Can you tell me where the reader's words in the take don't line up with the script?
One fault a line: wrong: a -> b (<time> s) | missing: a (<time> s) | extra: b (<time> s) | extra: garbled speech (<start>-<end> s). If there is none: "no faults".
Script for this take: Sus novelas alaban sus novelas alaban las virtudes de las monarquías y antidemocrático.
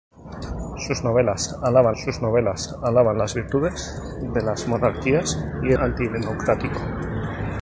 no faults